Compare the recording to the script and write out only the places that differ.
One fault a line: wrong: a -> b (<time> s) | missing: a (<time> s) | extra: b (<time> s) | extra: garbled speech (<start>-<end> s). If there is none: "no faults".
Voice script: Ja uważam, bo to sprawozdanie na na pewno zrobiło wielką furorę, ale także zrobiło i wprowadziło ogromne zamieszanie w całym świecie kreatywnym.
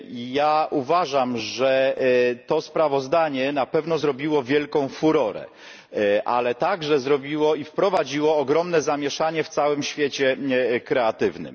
wrong: bo -> że (1.4 s)
missing: na (3.7 s)